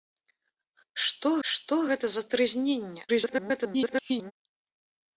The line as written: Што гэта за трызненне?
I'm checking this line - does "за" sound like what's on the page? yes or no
yes